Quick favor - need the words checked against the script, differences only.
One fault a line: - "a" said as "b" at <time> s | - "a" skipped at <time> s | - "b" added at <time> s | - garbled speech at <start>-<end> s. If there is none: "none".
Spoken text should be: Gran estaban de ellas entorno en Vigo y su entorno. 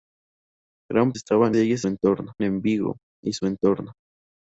none